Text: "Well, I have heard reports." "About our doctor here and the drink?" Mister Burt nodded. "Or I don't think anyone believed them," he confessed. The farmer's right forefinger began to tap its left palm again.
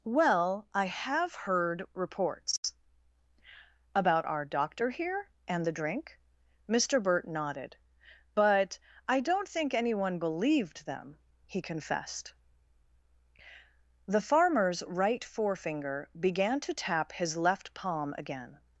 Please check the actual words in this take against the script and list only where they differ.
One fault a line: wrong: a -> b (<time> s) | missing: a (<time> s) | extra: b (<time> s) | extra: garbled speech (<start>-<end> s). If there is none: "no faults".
wrong: Or -> But (8.3 s)
wrong: its -> his (17.1 s)